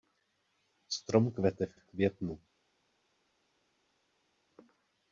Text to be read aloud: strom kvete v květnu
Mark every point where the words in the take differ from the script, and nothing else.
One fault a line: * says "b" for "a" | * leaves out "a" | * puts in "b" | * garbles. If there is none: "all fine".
* puts in "v"